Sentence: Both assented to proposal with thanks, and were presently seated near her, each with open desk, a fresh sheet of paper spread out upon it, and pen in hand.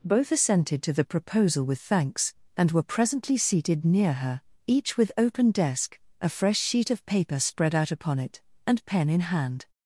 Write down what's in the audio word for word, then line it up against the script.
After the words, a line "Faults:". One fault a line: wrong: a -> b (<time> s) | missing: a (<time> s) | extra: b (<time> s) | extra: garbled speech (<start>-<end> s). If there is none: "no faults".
Both assented to the proposal with thanks, and were presently seated near her, each with open desk, a fresh sheet of paper spread out upon it, and pen in hand.
Faults:
extra: the (0.9 s)